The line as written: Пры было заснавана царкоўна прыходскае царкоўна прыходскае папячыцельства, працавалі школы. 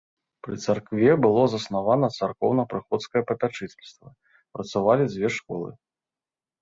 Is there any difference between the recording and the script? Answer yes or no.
yes